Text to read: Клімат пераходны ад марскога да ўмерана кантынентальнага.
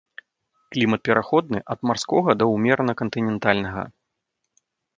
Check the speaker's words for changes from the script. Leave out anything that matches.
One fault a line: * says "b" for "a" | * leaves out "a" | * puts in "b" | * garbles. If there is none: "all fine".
all fine